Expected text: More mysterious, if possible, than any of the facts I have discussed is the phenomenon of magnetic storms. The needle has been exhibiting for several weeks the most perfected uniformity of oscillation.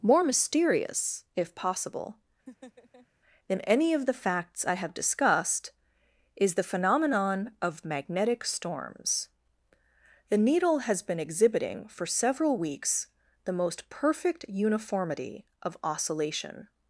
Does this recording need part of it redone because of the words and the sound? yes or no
yes